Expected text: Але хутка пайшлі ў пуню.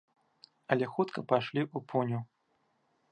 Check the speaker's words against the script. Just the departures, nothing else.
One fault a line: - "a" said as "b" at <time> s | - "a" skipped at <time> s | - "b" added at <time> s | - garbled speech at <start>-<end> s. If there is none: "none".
none